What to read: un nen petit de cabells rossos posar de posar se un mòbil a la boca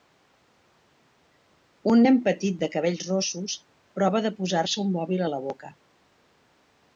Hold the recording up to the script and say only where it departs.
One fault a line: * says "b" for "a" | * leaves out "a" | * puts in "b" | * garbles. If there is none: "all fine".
* says "prova" for "posar"